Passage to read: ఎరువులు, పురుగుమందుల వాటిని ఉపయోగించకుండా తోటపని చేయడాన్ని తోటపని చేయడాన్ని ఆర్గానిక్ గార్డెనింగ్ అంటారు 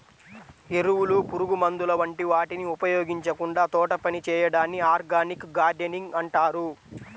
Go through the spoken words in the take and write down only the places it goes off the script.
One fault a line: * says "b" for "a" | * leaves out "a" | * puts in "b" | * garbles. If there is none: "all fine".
* puts in "వంటి"
* leaves out "తోటపని చేయడాన్ని"